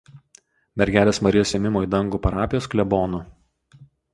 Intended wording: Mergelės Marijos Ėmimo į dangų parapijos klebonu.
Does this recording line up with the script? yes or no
yes